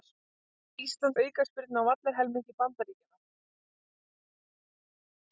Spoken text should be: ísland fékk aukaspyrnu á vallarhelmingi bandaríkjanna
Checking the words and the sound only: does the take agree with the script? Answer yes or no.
no